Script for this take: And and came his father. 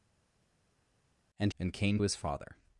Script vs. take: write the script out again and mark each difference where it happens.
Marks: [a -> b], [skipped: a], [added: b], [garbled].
And and came his father.